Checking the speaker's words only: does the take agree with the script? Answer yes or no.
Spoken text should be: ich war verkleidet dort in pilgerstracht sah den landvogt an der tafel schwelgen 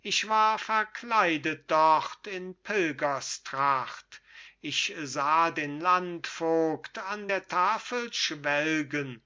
no